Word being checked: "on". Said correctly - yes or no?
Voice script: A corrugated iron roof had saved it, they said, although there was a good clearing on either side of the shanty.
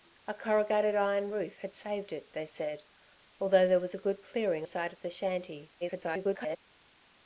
no